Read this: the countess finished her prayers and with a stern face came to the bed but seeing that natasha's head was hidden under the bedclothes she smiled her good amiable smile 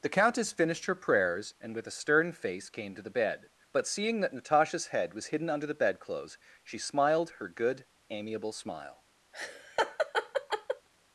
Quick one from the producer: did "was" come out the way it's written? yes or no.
yes